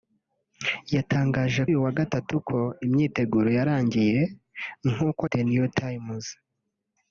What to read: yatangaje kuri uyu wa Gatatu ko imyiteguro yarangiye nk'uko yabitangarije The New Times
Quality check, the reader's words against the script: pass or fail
fail